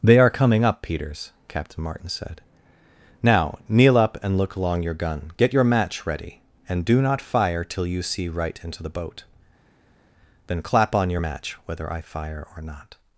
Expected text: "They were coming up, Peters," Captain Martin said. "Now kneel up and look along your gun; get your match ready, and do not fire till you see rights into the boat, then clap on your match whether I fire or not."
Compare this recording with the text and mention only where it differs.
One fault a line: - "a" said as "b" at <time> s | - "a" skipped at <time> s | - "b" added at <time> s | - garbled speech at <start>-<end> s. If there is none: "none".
- "were" said as "are" at 0.2 s
- "rights" said as "right" at 8.3 s